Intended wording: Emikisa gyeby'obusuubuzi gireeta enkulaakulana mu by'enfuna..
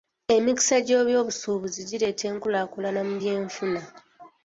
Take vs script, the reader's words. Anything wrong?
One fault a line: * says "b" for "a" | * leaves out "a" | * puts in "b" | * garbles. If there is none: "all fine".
all fine